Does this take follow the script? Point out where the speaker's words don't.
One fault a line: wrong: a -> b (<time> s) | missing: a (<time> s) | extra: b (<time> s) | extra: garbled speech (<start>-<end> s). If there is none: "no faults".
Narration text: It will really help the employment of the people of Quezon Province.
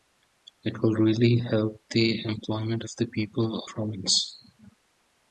missing: of Quezon (3.6 s)